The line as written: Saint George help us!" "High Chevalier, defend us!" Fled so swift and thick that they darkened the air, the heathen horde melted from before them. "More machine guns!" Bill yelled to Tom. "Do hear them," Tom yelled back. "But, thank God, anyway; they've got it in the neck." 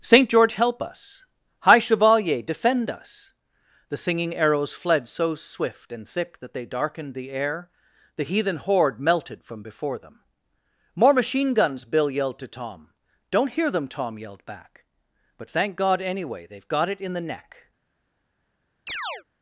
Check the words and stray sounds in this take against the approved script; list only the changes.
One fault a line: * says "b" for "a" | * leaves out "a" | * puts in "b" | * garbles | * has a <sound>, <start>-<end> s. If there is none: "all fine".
* puts in "The singing arrows"
* says "Don't" for "Do"
* has a chirp, 18.9-19.2 s